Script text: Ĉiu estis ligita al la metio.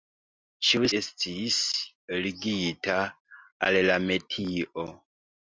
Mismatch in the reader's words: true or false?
false